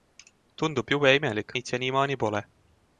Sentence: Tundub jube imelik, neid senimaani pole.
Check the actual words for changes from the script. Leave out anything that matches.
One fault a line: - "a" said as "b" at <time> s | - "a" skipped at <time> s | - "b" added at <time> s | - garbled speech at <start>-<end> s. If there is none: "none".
none